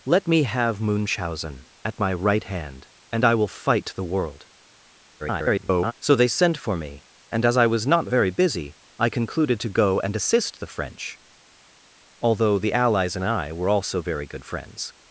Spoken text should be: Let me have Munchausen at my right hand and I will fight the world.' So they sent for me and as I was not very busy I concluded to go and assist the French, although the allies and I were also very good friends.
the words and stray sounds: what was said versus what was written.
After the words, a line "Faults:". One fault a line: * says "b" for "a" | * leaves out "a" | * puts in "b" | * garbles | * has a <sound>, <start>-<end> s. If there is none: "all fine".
Let me have Munchausen at my right hand and I will fight the world.' [garbled] So they sent for me and as I was not very busy I concluded to go and assist the French, although the allies and I were also very good friends.
Faults:
* garbles